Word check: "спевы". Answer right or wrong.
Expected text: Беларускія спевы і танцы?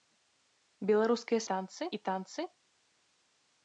wrong